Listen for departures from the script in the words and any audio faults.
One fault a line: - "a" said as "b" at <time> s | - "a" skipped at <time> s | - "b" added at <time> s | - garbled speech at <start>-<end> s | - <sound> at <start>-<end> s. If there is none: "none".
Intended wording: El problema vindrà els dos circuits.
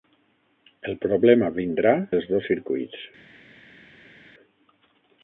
none